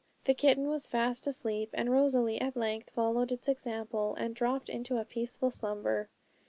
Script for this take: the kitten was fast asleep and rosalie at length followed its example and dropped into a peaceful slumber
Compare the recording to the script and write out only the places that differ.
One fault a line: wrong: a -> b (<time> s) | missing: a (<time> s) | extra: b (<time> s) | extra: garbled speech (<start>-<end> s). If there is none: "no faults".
no faults